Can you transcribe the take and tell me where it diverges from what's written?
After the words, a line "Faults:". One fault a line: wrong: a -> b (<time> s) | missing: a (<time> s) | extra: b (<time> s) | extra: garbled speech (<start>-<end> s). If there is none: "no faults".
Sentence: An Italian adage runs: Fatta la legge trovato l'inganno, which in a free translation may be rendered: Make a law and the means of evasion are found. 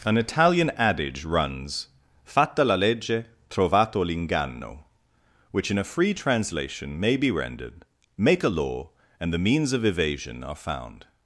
An Italian adage runs: Fatta la legge trovato l'inganno, which in a free translation may be rendered: Make a law and the means of evasion are found.
Faults:
no faults